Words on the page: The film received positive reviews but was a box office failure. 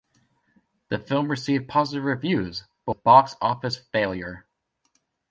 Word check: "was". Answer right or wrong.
wrong